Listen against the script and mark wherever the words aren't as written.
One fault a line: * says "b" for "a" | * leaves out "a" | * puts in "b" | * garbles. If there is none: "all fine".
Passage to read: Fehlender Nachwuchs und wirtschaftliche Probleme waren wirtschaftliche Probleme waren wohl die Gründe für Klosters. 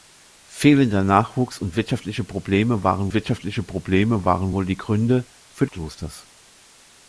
all fine